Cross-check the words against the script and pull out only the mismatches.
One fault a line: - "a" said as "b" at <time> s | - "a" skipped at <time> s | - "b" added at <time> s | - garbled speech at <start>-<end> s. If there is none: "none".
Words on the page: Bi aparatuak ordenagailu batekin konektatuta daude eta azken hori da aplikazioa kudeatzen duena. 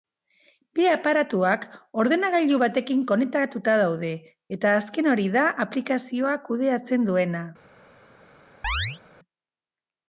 none